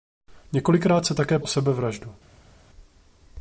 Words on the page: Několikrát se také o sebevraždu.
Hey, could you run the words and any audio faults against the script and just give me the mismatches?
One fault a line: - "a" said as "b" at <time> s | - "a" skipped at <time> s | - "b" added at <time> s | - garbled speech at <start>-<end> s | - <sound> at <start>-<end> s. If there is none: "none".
none